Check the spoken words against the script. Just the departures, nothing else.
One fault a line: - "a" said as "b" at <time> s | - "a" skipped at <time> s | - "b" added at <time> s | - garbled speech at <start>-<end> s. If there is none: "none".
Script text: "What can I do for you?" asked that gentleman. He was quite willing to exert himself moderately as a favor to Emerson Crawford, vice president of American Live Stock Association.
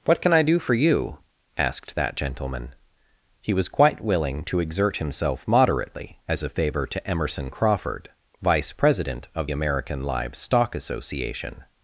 none